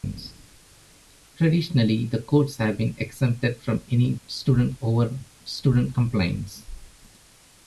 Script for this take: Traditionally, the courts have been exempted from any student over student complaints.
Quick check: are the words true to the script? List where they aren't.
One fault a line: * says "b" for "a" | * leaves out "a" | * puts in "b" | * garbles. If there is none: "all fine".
all fine